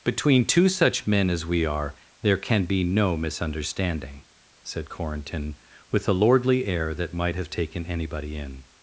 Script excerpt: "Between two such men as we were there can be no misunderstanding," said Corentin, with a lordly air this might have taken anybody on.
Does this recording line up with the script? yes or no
no